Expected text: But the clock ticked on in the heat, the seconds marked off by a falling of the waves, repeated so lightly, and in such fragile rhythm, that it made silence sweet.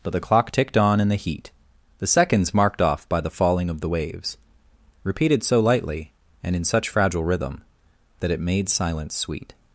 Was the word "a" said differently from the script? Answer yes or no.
yes